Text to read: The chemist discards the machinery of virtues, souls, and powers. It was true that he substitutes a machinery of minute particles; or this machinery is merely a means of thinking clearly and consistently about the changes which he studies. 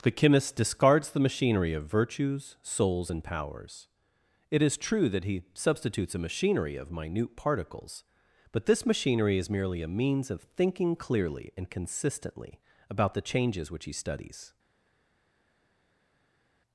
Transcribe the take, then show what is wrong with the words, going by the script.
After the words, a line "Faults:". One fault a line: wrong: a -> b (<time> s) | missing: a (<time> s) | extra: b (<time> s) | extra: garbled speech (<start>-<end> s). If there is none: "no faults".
The chemist discards the machinery of virtues, souls, and powers. It is true that he substitutes a machinery of minute particles; but this machinery is merely a means of thinking clearly and consistently about the changes which he studies.
Faults:
wrong: was -> is (4.6 s)
wrong: or -> but (8.5 s)